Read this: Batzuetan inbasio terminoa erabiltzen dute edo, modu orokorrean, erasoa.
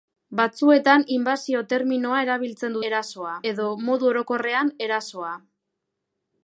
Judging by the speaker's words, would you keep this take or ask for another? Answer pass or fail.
fail